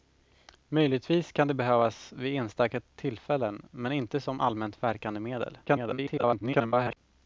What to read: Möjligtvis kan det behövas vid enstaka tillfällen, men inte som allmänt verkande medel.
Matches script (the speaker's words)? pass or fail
fail